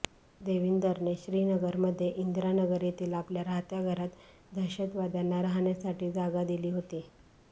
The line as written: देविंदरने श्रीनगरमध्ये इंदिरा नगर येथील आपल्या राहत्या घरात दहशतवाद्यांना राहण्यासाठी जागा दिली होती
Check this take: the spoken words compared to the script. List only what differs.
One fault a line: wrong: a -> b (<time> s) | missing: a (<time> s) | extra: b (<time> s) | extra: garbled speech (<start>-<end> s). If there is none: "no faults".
no faults